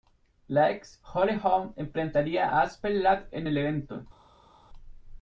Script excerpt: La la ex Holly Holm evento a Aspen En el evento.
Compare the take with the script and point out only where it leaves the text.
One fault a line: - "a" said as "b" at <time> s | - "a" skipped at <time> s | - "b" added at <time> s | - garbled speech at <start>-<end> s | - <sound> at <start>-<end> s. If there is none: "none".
- "la" skipped at 0.7 s
- "evento" said as "enfrentaría" at 1.8 s
- "Ladd" added at 3.0 s